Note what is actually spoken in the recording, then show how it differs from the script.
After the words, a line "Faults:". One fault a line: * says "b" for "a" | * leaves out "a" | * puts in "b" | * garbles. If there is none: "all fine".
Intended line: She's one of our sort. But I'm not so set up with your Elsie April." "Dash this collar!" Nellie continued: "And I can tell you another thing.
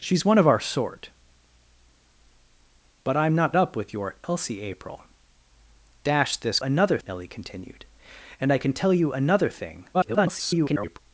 She's one of our sort. But I'm not up with your Elsie April." "Dash this another!" Nellie continued: "And I can tell you another thing. [garbled]
Faults:
* leaves out "so set"
* says "another" for "collar"
* garbles